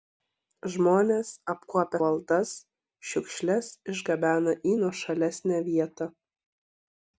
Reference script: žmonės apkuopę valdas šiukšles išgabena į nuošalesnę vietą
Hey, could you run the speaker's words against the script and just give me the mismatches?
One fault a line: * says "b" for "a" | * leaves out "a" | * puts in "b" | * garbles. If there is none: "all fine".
all fine